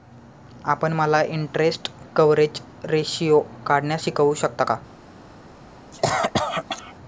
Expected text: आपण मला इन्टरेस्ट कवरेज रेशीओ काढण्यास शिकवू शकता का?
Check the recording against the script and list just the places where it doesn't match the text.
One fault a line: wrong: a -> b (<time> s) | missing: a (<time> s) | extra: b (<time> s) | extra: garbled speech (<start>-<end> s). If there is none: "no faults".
no faults